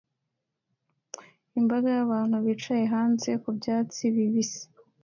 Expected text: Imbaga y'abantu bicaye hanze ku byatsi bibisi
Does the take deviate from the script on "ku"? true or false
false